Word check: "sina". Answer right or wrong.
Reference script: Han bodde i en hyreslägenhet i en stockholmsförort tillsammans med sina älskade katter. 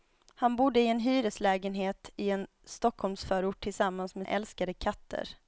wrong